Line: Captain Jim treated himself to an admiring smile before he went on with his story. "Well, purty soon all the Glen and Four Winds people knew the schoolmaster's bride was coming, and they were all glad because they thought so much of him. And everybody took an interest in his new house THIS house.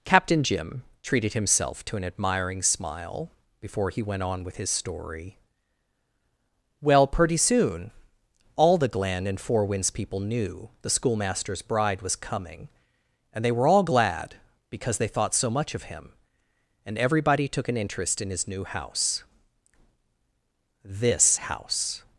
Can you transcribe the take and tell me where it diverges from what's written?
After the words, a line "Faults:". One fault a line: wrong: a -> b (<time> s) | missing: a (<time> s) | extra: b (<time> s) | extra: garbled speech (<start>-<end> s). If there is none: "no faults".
Captain Jim treated himself to an admiring smile before he went on with his story. "Well, pretty soon all the Glen and Four Winds people knew the schoolmaster's bride was coming, and they were all glad because they thought so much of him. And everybody took an interest in his new house THIS house.
Faults:
wrong: purty -> pretty (7.1 s)